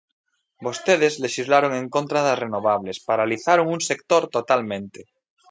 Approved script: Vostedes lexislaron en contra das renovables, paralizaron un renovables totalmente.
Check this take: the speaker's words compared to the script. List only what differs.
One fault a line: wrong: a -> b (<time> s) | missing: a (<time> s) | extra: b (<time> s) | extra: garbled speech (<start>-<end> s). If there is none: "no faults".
wrong: renovables -> sector (3.9 s)